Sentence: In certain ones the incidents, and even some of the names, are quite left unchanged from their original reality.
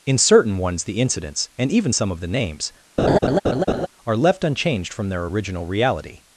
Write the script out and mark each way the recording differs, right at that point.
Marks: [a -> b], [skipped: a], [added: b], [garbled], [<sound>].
In certain ones the incidents, and even some of the names, [laugh] are [skipped: quite] left unchanged from their original reality.